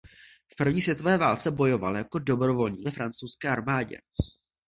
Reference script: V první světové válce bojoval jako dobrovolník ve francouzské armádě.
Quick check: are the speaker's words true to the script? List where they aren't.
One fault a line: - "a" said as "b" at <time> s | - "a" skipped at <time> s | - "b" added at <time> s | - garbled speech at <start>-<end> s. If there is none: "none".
none